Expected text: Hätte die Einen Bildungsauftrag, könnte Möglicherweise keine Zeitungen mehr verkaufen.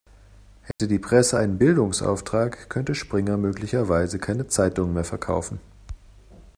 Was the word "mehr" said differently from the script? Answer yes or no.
no